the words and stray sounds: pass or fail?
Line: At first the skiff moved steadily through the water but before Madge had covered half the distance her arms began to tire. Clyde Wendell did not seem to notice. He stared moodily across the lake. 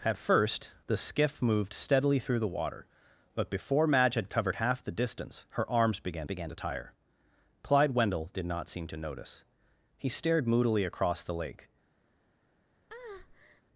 fail